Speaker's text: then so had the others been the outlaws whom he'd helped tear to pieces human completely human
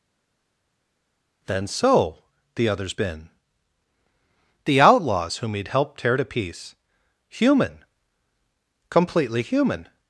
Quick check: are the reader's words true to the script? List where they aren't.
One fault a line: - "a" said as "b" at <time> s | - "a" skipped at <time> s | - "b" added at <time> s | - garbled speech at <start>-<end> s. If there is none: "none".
- "had" skipped at 2.2 s
- "pieces" said as "piece" at 6.2 s